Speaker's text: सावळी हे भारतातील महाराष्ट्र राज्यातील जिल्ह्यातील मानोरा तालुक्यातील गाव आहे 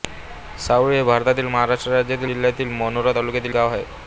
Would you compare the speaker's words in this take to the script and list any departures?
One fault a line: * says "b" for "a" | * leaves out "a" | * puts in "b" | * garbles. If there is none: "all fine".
all fine